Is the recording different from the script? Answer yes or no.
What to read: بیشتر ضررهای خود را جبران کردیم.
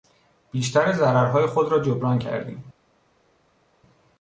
no